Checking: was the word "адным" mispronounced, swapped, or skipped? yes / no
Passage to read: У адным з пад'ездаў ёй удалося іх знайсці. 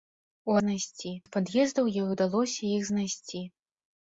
yes